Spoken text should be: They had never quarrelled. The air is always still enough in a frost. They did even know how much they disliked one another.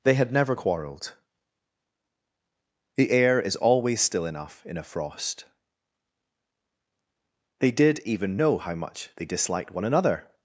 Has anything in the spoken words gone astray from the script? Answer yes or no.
no